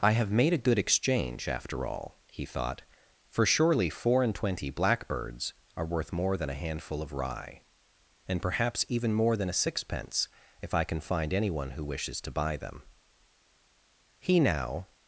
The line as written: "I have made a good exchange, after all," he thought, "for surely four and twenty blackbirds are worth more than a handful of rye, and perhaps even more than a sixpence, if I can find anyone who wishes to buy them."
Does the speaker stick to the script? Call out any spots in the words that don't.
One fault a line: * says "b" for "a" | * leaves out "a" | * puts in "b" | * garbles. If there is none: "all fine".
* puts in "He now"